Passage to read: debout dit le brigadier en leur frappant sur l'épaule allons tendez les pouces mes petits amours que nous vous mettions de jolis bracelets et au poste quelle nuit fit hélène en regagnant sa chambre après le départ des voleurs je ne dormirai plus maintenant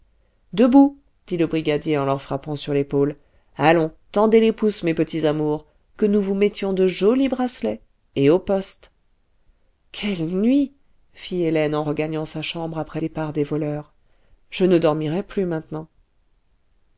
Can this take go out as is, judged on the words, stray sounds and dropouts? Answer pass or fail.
fail